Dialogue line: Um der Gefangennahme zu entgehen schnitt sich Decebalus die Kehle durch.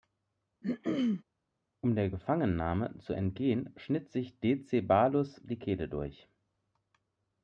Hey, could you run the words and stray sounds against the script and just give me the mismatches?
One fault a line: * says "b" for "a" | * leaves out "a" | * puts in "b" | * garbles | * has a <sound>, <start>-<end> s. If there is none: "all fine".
* has a throat clearing, 0.6-1.2 s